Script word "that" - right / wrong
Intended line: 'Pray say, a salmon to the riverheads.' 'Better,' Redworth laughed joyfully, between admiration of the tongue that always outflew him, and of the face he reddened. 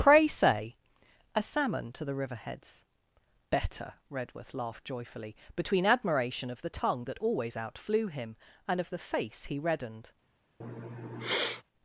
right